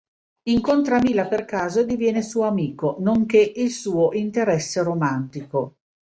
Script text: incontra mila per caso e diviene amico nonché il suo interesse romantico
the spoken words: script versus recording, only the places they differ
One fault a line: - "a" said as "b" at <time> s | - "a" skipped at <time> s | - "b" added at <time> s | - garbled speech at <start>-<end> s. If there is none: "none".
- "suo" added at 2.2 s